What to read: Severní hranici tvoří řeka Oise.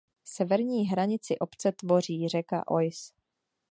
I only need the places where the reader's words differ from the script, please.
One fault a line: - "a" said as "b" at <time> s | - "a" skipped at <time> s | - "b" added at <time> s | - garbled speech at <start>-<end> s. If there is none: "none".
- "obce" added at 1.4 s